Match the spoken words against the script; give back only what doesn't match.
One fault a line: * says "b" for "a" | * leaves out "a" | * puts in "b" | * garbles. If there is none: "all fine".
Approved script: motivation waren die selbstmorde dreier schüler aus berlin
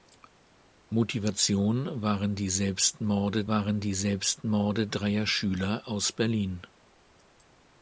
* puts in "waren die selbstmorde"